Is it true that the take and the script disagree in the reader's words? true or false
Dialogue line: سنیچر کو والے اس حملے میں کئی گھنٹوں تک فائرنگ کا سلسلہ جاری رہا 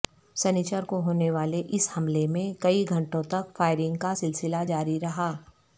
true